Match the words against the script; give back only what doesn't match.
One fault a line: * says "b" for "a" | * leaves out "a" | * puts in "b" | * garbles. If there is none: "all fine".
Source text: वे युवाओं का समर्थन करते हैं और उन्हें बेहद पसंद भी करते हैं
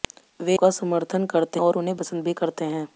* leaves out "युवाओं"
* leaves out "हैं"
* leaves out "बेहद"